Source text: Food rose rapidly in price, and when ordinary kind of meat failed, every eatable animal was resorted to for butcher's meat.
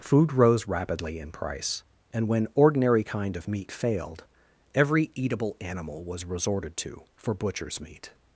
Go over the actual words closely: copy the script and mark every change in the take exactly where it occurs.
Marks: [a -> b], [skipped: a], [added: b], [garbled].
Food rose rapidly in price, and when ordinary kind of meat failed, every eatable animal was resorted to for butcher's meat.